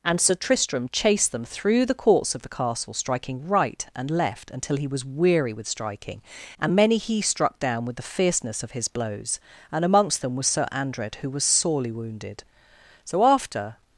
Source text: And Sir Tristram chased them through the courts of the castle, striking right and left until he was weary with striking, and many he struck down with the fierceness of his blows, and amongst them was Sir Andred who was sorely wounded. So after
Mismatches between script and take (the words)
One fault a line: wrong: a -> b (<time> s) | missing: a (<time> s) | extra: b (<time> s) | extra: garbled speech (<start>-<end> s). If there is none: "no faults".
no faults